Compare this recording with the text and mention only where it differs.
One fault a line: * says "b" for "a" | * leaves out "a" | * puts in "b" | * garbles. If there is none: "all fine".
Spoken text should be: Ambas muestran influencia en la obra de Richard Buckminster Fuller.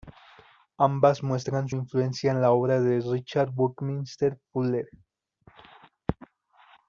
all fine